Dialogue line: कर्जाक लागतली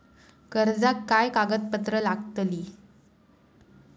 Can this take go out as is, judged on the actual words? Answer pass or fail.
fail